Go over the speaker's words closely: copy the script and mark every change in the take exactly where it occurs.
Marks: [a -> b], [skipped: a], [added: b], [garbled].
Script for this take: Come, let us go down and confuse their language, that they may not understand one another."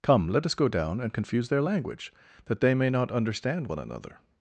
Come, let us go down and confuse their language, that they may not understand one another."